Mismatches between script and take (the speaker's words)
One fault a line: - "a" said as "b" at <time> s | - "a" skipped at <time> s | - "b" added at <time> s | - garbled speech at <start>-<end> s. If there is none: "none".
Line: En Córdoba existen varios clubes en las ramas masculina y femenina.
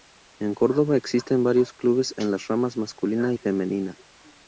none